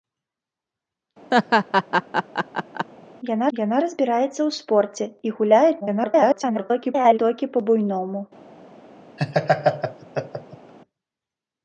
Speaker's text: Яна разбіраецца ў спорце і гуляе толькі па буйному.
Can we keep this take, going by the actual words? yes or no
no